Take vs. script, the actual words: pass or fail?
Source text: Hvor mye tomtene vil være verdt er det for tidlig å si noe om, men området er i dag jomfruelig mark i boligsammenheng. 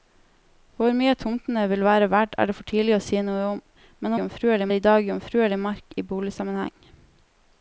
fail